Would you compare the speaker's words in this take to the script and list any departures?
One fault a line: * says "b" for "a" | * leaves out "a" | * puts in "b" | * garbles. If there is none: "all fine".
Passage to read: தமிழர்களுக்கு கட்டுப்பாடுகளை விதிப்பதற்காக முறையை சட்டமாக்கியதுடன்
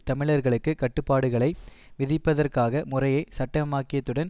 all fine